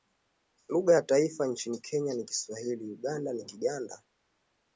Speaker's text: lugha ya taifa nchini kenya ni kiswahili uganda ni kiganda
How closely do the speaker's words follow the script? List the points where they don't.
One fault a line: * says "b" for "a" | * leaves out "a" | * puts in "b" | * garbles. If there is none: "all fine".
all fine